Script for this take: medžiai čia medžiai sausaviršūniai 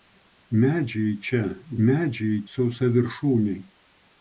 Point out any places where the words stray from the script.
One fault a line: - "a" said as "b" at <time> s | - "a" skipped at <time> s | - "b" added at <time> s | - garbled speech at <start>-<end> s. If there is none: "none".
none